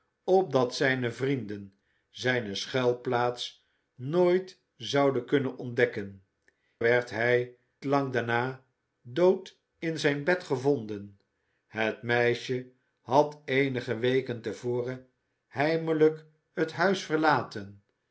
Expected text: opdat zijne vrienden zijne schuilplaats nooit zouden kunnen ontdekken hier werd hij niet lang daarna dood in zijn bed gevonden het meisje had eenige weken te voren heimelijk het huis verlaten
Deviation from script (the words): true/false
true